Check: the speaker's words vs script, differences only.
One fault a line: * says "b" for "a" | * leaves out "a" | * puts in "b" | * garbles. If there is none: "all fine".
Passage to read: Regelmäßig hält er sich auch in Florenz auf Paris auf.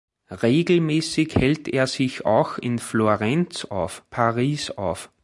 all fine